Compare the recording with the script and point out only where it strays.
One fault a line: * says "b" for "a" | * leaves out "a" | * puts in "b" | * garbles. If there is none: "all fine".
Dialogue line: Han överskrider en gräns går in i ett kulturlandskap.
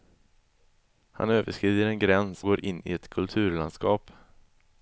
all fine